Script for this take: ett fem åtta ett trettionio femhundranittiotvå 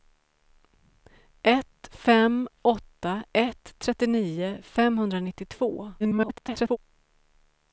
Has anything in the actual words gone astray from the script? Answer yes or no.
yes